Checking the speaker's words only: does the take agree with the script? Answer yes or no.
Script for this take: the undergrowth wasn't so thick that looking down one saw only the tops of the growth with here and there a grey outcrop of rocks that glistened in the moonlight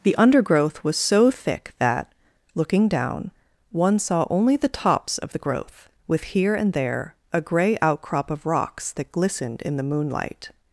no